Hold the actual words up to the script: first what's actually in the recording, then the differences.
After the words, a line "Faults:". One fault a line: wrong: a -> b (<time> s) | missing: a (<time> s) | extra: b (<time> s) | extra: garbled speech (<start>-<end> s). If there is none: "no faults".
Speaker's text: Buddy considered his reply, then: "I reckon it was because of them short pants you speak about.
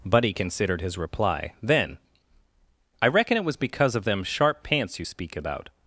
Buddy considered his reply, then: "I reckon it was because of them sharp pants you speak about.
Faults:
wrong: short -> sharp (4.2 s)